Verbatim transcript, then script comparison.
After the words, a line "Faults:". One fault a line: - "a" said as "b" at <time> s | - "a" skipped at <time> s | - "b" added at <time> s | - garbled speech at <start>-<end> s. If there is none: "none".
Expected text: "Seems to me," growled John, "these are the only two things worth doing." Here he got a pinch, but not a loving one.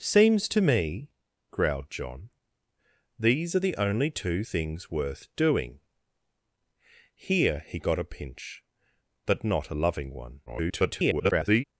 "Seems to me," growled John, "these are the only two things worth doing." Here he got a pinch, but not a loving one. [garbled]
Faults:
- garbled speech at 10.5-11.6 s